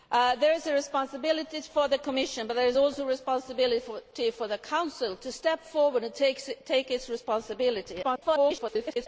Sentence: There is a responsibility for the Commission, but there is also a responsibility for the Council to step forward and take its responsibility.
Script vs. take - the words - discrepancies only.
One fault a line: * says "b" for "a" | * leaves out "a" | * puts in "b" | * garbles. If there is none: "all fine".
* garbles